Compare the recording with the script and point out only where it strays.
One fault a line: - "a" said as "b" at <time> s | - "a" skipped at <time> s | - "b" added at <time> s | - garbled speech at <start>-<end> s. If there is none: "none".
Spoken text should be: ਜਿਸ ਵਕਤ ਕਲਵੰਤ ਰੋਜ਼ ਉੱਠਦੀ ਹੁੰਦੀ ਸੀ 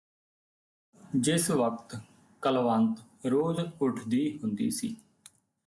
none